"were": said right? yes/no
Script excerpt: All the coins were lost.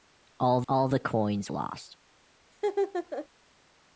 no